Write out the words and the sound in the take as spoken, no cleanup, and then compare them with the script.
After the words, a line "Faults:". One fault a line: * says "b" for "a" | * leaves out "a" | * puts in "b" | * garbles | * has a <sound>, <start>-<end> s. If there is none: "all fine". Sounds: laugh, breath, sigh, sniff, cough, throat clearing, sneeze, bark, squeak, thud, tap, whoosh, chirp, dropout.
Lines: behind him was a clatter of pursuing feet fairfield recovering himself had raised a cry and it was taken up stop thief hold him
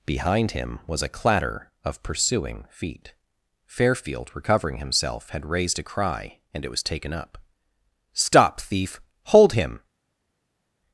behind him was a clatter of pursuing feet fairfield recovering himself had raised a cry and it was taken up stop thief hold him
Faults:
all fine